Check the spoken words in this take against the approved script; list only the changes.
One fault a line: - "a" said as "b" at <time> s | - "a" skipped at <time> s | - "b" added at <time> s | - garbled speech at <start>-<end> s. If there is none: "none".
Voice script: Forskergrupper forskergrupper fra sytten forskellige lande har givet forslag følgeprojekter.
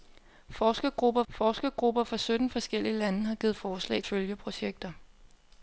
none